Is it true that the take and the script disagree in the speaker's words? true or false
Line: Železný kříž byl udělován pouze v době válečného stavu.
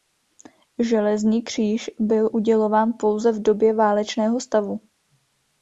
false